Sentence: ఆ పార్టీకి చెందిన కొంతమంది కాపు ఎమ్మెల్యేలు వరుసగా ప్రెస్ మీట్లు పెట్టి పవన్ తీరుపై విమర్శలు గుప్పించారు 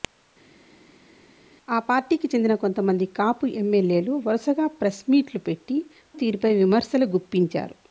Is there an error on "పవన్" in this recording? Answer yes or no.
yes